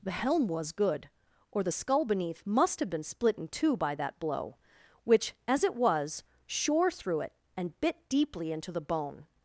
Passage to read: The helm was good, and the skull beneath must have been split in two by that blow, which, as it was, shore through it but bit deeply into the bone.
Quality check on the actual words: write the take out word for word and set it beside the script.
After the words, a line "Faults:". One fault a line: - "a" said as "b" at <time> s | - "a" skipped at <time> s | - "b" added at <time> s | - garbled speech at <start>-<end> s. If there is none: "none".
The helm was good, or the skull beneath must have been split in two by that blow, which, as it was, shore through it and bit deeply into the bone.
Faults:
- "and" said as "or" at 1.5 s
- "but" said as "and" at 7.6 s